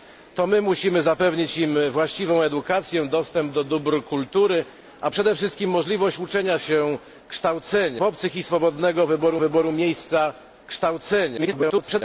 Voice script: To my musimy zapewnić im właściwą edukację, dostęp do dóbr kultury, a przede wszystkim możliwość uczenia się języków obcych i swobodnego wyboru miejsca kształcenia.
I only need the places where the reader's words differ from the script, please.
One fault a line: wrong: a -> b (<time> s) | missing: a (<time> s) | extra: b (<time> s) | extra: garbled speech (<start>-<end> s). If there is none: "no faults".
wrong: języków -> kształcenia (7.3 s)
extra: wyboru (9.4 s)
extra: garbled speech (11.4-12.0 s)